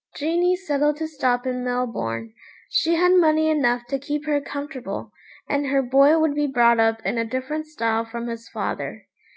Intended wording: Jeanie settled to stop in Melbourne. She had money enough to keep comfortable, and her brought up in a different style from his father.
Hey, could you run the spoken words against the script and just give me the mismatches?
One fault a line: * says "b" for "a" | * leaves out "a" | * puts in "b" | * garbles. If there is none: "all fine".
* puts in "her"
* puts in "boy would be"